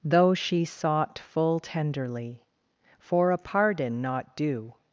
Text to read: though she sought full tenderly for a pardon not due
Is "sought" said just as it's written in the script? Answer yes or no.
yes